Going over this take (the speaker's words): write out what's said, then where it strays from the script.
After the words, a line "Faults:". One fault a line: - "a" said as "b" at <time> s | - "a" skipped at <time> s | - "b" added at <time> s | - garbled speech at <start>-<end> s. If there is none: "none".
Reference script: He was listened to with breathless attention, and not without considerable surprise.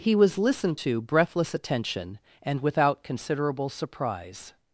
He was listened to breathless attention, and without considerable surprise.
Faults:
- "with" skipped at 1.0 s
- "not" skipped at 2.6 s